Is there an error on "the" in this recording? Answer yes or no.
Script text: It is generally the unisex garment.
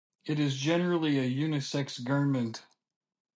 yes